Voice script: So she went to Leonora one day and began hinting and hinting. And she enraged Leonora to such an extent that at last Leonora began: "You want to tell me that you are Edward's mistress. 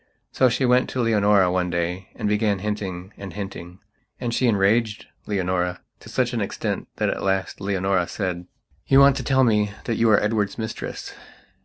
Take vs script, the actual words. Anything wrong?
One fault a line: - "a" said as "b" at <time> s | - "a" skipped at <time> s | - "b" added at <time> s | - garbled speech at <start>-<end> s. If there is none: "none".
- "began" said as "said" at 8.1 s